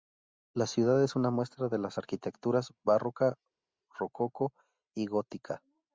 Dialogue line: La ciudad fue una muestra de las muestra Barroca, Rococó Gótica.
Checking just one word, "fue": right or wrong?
wrong